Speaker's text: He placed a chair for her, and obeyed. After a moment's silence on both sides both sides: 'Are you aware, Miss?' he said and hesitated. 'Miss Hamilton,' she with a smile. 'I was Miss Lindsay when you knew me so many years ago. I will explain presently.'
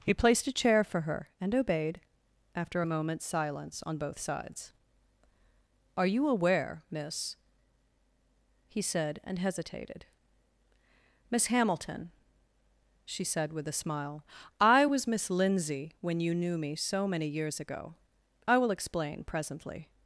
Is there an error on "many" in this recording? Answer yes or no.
no